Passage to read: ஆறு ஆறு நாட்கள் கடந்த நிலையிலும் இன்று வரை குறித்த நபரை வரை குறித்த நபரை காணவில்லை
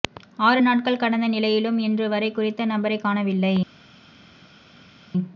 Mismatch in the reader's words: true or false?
true